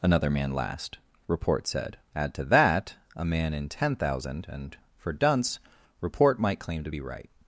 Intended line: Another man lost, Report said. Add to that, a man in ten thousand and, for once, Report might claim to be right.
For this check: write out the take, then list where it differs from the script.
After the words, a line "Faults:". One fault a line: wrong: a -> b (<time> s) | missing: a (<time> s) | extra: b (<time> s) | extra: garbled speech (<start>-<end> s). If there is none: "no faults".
Another man last, Report said. Add to that, a man in ten thousand and, for dunce, Report might claim to be right.
Faults:
wrong: lost -> last (0.5 s)
wrong: once -> dunce (5.1 s)